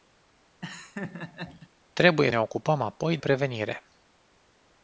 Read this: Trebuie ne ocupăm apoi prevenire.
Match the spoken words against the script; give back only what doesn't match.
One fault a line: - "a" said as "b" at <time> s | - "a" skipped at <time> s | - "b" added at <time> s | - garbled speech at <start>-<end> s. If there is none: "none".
none